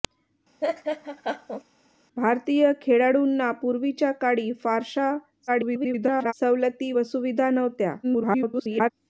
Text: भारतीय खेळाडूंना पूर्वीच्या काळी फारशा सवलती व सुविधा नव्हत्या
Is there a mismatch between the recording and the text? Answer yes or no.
yes